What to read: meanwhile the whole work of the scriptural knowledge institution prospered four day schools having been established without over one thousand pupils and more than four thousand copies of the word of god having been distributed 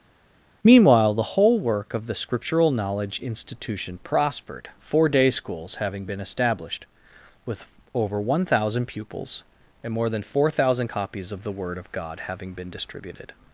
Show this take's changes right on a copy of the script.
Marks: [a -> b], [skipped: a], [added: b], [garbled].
meanwhile the whole work of the scriptural knowledge institution prospered four day schools having been established [without -> with] over one thousand pupils and more than four thousand copies of the word of god having been distributed